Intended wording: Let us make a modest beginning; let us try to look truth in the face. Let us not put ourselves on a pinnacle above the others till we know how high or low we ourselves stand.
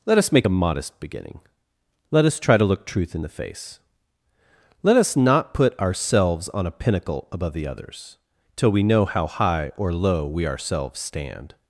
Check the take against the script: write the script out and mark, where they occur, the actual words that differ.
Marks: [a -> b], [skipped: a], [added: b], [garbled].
Let us make a modest beginning; let us try to look truth in the face. Let us not put ourselves on a pinnacle above the others till we know how high or low we ourselves stand.